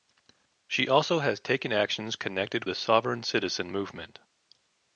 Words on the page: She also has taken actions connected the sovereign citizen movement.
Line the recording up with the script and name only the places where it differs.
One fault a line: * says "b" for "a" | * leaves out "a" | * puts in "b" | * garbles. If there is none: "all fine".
all fine